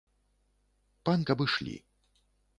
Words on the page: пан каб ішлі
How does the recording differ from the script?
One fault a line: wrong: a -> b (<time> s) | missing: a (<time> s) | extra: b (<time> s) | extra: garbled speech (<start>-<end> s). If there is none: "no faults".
no faults